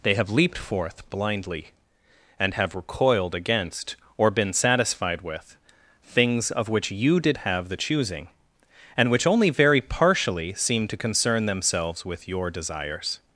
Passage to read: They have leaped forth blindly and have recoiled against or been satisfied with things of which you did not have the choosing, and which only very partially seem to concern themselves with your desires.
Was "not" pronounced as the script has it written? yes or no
no